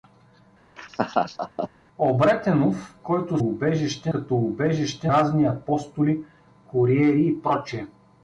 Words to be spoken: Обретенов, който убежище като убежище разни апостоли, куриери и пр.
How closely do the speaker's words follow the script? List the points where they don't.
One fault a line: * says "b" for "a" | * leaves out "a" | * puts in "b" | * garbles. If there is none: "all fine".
all fine